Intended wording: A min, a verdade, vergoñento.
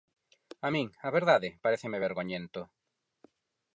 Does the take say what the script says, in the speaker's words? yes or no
no